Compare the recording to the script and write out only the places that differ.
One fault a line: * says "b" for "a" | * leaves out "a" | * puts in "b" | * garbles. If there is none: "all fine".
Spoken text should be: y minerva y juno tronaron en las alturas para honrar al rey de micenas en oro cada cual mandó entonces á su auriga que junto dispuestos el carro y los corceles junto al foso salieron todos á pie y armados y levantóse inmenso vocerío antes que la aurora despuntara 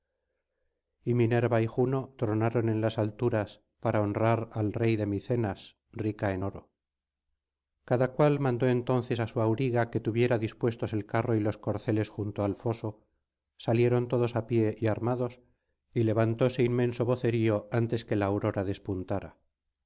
* puts in "rica"
* says "tuviera" for "junto"